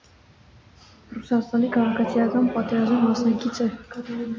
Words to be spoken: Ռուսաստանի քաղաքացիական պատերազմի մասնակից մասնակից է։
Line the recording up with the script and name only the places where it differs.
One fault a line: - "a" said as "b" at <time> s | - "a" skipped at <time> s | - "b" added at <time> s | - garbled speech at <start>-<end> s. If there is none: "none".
- "մասնակից" skipped at 3.6 s